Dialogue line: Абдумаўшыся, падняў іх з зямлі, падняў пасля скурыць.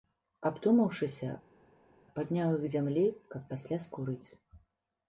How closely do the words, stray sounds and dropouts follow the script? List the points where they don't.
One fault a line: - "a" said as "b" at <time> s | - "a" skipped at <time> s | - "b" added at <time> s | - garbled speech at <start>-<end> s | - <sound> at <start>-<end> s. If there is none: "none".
- "падняў" said as "каб" at 3.3 s